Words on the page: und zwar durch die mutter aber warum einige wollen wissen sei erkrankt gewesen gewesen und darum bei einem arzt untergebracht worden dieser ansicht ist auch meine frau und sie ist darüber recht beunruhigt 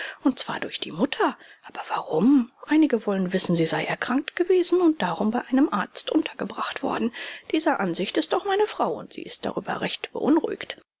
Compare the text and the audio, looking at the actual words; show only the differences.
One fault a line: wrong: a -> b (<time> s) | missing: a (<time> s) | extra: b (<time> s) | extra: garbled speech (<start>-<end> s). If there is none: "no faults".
extra: sie (3.5 s)
missing: gewesen (4.8 s)